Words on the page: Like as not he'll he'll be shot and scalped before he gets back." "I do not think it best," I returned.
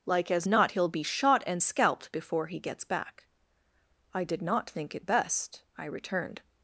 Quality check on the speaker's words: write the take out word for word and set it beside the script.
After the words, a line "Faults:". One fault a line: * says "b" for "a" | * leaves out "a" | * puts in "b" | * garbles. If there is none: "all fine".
Like as not he'll be shot and scalped before he gets back." "I did not think it best," I returned.
Faults:
* leaves out "he'll"
* says "did" for "do"